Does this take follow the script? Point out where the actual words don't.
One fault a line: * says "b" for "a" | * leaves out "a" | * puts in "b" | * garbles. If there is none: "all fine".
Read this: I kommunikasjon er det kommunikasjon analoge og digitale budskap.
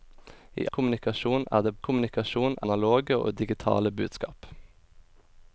all fine